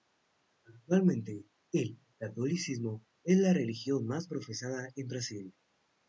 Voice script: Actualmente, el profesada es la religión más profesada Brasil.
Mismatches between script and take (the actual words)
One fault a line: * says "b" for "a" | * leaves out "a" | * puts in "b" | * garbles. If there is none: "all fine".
* says "catolicismo" for "profesada"
* puts in "en"